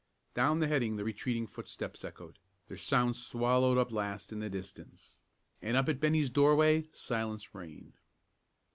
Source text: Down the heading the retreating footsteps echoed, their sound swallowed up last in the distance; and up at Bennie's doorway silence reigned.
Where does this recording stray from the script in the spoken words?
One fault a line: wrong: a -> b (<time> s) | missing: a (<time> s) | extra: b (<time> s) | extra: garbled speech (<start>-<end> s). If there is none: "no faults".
no faults